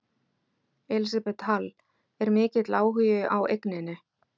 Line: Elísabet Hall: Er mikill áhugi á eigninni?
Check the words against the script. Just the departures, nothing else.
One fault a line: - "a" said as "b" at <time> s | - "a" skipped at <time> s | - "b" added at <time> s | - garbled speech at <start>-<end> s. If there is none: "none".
none